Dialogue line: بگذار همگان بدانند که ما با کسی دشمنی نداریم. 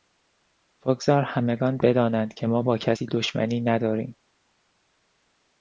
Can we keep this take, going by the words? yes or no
yes